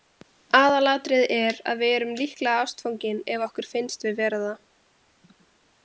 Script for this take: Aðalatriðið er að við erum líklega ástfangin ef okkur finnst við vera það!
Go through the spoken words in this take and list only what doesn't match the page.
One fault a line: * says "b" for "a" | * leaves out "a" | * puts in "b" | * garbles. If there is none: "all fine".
all fine